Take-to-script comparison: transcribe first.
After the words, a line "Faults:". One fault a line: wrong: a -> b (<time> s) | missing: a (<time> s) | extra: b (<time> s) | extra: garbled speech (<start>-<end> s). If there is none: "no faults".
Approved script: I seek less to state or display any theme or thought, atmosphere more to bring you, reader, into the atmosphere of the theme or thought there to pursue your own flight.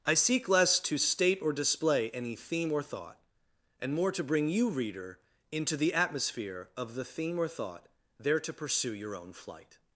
I seek less to state or display any theme or thought, and more to bring you, reader, into the atmosphere of the theme or thought there to pursue your own flight.
Faults:
wrong: atmosphere -> and (3.8 s)